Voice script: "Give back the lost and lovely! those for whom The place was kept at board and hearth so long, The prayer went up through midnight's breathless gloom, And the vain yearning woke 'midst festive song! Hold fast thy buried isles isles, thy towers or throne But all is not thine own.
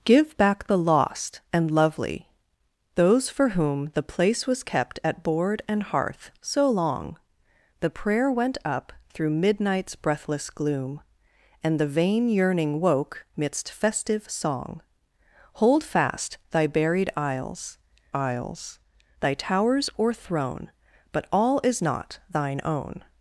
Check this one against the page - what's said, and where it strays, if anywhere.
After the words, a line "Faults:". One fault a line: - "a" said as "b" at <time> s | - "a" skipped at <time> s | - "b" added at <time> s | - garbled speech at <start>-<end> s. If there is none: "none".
"Give back the lost and lovely! those for whom The place was kept at board and hearth so long, The prayer went up through midnight's breathless gloom, And the vain yearning woke 'midst festive song! Hold fast thy buried isles isles, thy towers or throne But all is not thine own.
Faults:
none